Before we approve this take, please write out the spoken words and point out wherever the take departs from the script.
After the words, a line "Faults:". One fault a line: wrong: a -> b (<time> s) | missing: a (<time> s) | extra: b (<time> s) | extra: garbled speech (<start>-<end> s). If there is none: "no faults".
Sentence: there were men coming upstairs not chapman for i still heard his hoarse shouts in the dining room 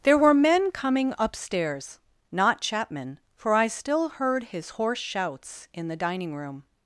there were men coming upstairs not chapman for i still heard his hoarse shouts in the dining room
Faults:
no faults